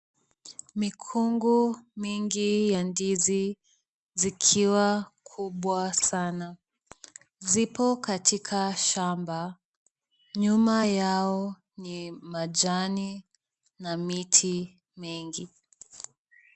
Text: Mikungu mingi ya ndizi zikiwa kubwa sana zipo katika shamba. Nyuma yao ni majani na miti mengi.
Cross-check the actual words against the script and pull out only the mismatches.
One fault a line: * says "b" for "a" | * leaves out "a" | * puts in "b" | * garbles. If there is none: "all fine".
all fine